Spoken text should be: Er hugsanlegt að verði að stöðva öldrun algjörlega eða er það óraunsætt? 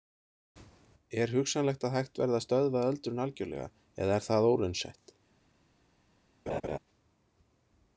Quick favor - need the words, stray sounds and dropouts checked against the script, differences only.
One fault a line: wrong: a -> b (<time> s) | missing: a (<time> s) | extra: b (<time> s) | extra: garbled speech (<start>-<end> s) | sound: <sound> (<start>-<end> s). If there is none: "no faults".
extra: hægt (2.0 s)
sound: laugh (6.5-6.8 s)